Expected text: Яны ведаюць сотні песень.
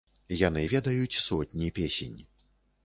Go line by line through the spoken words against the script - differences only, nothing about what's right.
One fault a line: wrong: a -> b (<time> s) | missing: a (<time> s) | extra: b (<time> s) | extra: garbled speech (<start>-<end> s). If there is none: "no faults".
no faults